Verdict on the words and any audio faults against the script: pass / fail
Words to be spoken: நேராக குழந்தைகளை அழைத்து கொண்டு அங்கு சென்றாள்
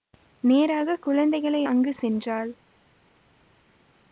fail